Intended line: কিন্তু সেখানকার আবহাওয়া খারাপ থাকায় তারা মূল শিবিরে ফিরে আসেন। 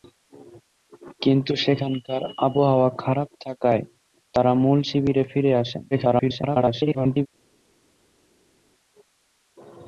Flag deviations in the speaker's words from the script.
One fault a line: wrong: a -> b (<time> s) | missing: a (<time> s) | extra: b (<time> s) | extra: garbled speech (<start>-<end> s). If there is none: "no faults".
extra: garbled speech (5.9-7.3 s)